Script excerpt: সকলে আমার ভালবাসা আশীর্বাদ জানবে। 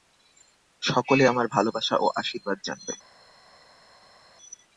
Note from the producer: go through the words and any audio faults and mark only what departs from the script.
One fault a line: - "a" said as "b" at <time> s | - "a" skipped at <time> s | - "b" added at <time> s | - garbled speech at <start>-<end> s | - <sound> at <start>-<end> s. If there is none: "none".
- "ও" added at 1.9 s